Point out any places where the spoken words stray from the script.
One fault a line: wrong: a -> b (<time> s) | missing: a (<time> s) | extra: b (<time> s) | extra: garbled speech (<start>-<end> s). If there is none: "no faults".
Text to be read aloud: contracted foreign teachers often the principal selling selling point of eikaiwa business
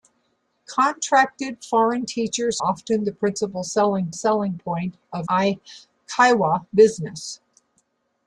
no faults